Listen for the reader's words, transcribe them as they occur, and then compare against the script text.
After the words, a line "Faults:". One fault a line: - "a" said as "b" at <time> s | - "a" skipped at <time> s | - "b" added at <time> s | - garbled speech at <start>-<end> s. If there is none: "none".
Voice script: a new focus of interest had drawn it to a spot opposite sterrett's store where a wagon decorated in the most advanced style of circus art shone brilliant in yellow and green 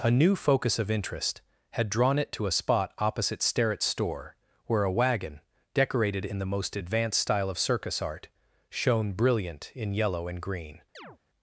a new focus of interest had drawn it to a spot opposite sterrett's store where a wagon decorated in the most advanced style of circus art shone brilliant in yellow and green
Faults:
none